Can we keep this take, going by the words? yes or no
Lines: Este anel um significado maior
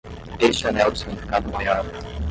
yes